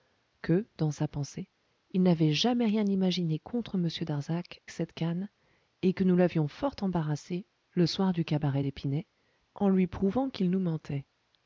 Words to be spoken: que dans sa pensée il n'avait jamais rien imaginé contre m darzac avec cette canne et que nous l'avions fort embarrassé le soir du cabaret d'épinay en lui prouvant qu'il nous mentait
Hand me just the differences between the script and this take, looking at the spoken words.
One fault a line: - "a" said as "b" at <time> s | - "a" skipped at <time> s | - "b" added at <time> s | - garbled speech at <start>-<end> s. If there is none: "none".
- "avec" skipped at 4.6 s